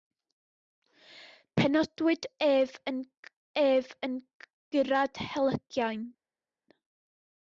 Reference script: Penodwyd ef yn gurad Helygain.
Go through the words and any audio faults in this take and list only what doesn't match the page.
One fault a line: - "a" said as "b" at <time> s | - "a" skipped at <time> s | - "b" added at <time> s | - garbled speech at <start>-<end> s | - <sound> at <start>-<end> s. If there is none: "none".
- "ef yn" added at 3.6 s